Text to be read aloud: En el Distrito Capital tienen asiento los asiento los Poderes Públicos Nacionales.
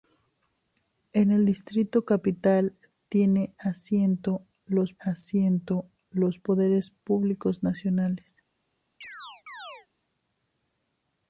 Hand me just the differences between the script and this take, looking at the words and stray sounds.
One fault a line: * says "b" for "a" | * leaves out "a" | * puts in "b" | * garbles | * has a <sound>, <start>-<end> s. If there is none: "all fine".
* has a chirp, 9.0-9.9 s